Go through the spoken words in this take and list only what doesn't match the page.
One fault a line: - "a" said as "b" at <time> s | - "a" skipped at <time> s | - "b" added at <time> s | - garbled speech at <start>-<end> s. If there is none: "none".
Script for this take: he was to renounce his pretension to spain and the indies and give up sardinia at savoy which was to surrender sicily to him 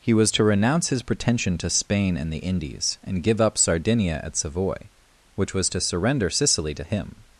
none